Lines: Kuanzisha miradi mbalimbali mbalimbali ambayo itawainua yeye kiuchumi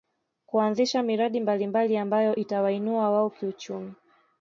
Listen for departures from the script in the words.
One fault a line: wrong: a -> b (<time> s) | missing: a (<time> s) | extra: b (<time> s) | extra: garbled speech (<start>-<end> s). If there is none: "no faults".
missing: mbalimbali (2.0 s)
wrong: yeye -> wao (3.1 s)